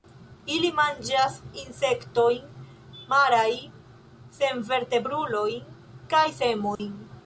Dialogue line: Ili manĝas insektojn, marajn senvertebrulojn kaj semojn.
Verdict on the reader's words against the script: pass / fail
pass